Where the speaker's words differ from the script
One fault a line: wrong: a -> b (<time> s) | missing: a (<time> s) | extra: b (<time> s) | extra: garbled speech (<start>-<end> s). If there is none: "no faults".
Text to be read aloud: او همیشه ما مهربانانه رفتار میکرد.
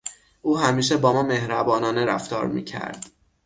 extra: با (1.0 s)